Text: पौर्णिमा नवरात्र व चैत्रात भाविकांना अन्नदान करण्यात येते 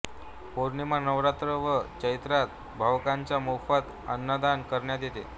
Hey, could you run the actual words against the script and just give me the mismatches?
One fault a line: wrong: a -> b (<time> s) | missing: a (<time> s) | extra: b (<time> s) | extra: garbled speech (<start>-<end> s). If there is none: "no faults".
extra: मोफत (3.4 s)